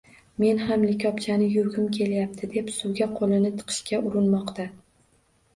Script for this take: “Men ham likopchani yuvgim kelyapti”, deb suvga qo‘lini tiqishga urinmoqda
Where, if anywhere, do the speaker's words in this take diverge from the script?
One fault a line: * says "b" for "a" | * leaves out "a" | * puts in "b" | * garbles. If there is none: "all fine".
all fine